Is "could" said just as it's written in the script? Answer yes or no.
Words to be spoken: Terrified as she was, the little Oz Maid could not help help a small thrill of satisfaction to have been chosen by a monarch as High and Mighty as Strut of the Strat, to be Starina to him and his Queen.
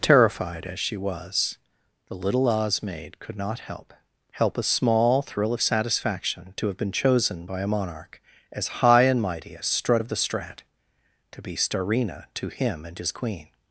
yes